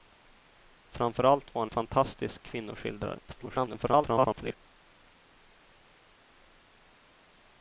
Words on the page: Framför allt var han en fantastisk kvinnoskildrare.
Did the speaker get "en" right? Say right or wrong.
wrong